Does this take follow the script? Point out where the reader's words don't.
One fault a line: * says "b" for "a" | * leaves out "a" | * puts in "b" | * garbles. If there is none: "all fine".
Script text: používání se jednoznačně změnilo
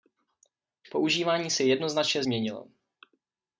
all fine